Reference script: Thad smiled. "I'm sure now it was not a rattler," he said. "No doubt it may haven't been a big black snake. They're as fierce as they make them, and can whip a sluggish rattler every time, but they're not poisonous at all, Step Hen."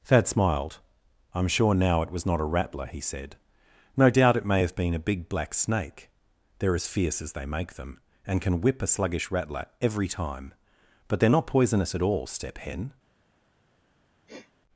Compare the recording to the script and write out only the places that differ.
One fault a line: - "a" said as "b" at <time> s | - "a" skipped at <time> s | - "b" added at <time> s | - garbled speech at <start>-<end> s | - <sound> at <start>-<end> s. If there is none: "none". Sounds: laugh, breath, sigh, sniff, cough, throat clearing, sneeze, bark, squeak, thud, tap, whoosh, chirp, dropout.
- "haven't" said as "have" at 4.6 s
- sniff at 14.3-14.5 s